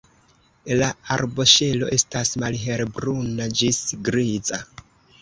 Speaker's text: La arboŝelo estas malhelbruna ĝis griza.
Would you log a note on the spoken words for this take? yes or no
no